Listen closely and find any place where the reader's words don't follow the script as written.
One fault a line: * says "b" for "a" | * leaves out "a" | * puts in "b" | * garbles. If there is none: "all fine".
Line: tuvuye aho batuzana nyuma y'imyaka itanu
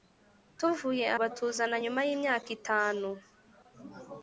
* leaves out "aho"